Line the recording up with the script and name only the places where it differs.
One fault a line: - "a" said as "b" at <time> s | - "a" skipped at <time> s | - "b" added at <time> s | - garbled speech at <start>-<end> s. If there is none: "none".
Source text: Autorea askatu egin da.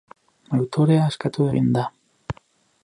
none